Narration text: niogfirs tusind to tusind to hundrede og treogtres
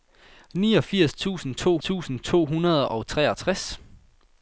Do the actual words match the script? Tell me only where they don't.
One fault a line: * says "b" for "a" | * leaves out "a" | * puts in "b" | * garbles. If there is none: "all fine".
all fine